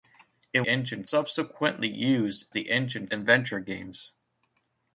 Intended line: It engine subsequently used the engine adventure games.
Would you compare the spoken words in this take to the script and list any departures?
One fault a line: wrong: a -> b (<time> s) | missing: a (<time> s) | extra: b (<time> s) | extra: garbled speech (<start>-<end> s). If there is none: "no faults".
no faults